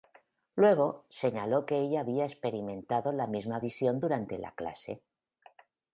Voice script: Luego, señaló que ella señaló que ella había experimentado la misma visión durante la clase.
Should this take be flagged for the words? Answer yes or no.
yes